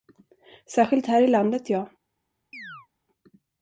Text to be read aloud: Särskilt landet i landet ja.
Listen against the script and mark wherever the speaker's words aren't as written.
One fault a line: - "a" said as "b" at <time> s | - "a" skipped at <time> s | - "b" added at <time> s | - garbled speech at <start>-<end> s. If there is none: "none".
- "landet" said as "här" at 1.1 s